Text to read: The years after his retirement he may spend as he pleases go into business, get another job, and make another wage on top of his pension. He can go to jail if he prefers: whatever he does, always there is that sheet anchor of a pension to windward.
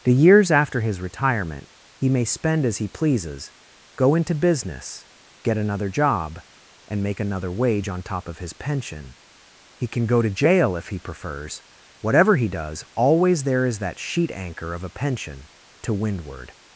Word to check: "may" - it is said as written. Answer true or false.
true